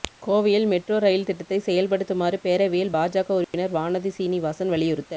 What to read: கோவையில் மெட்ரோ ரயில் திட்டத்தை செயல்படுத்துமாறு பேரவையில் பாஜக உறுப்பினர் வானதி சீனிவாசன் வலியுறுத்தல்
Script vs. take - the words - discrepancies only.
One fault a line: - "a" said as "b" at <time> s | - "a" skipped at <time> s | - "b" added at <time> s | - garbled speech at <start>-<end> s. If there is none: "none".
none